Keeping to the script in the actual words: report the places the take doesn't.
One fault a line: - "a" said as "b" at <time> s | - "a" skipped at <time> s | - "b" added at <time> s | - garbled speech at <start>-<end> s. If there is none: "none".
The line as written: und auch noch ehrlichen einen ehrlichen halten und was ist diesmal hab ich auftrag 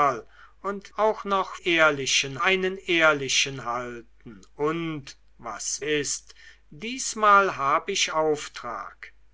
none